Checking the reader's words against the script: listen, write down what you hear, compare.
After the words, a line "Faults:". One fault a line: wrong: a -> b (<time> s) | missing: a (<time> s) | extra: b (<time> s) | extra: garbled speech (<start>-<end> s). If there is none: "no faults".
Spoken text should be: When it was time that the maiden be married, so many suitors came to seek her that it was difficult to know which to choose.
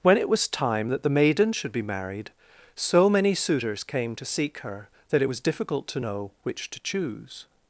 When it was time that the maiden should be married, so many suitors came to seek her that it was difficult to know which to choose.
Faults:
extra: should (1.5 s)